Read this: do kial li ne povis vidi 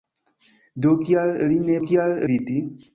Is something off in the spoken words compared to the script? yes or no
yes